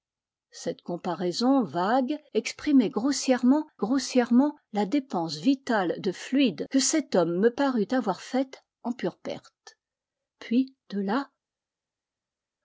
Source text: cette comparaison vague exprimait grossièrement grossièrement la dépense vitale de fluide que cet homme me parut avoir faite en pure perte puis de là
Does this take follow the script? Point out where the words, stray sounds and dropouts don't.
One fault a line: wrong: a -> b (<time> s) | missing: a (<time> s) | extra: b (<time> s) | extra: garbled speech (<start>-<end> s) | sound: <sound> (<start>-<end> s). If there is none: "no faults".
no faults